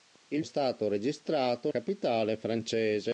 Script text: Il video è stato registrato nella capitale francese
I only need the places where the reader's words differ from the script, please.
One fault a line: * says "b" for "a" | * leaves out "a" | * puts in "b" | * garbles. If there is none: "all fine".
* leaves out "video"
* leaves out "nella"